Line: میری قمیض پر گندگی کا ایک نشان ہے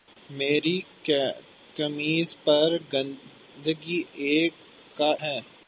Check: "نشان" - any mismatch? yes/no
yes